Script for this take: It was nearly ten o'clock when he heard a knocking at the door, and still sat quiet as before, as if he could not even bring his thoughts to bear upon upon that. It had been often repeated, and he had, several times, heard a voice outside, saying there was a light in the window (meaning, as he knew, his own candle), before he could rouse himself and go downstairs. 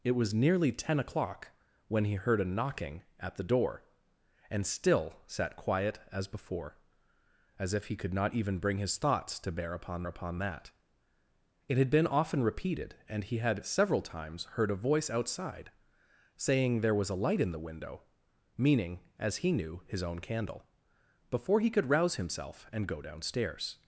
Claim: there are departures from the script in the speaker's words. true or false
false